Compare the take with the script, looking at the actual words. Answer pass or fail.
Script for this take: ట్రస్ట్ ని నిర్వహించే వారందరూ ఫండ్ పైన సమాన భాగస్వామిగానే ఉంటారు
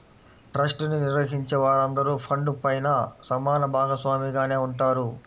pass